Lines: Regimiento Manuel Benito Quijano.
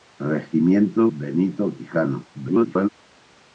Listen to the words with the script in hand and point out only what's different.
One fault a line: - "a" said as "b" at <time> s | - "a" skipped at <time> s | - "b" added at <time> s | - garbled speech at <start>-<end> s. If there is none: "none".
- "Manuel" skipped at 1.1 s
- garbled speech at 2.3-2.9 s